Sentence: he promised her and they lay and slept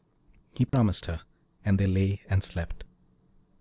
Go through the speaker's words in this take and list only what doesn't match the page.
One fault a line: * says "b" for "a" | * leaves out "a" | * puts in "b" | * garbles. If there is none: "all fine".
all fine